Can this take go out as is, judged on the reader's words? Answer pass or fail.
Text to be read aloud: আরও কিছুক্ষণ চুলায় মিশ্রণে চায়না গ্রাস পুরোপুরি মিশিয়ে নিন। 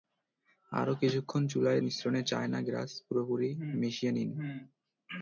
pass